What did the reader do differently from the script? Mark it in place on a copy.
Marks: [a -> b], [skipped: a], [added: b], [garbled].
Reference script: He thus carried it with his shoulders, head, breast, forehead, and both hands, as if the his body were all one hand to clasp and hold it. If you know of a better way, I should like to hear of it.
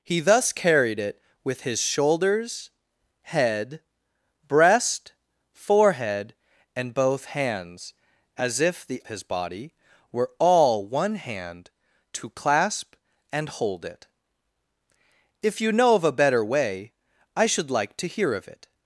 He thus carried it with his shoulders, head, breast, forehead, and both hands, as if the his body were all one hand to clasp and hold it. If you know of a better way, I should like to hear of it.